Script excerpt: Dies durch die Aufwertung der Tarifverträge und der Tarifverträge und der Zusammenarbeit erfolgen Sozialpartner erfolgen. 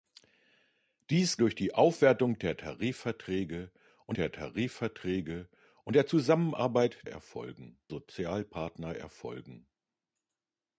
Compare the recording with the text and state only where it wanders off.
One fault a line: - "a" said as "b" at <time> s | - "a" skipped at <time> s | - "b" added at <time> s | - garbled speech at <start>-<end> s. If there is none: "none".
none